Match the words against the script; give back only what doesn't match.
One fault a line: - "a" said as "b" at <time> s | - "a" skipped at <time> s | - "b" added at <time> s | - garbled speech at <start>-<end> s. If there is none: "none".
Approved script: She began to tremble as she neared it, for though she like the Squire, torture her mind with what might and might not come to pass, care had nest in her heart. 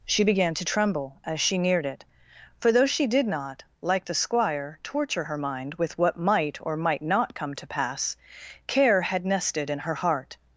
- "did not" added at 3.0 s
- "and" said as "or" at 6.6 s
- "nest" said as "nested" at 9.3 s